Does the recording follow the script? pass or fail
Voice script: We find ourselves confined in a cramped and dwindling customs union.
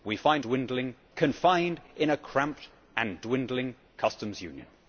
fail